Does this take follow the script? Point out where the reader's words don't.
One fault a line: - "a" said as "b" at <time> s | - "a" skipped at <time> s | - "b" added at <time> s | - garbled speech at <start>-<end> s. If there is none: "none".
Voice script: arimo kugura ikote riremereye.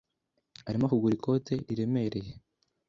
none